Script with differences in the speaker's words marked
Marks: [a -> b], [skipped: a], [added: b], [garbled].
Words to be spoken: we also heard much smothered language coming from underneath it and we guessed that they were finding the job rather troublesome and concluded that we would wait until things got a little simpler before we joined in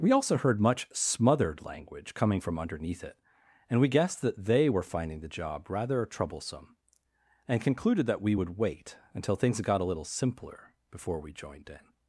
we also heard much smothered language coming from underneath it and we guessed that they were finding the job rather troublesome and concluded that we would wait until things got a little simpler before we joined in